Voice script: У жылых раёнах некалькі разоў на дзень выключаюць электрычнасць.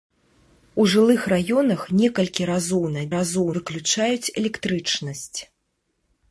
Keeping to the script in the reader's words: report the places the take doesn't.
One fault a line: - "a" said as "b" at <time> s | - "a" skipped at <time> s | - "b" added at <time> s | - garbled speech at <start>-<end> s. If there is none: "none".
- "дзень" said as "разоў" at 3.2 s